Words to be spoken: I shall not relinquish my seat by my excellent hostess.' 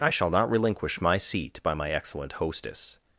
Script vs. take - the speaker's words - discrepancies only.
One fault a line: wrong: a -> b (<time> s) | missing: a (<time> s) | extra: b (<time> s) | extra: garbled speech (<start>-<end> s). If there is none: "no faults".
no faults